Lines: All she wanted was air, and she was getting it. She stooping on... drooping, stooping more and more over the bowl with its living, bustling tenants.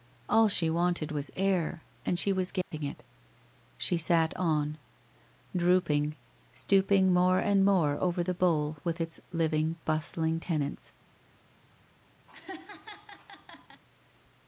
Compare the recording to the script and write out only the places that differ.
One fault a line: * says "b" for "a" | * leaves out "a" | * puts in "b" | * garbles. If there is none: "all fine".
* says "sat" for "stooping"